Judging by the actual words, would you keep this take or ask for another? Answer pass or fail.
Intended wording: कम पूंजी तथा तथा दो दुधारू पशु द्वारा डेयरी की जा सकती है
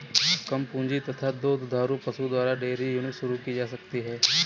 fail